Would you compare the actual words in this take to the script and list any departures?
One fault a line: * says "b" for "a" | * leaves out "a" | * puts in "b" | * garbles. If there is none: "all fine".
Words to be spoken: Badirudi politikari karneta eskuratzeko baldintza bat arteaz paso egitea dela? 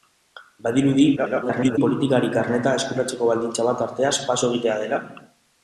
* garbles